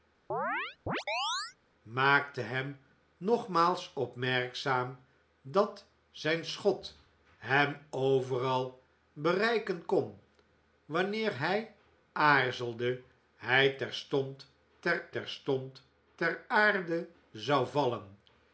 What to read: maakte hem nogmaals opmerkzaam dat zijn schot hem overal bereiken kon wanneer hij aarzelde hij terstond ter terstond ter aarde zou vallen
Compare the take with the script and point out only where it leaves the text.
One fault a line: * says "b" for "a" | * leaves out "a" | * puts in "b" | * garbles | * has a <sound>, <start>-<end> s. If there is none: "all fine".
* has a chirp, 0.3-1.6 s